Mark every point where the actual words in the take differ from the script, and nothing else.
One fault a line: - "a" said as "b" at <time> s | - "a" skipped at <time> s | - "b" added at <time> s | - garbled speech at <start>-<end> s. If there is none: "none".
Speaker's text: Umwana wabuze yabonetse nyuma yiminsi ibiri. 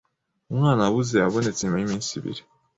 none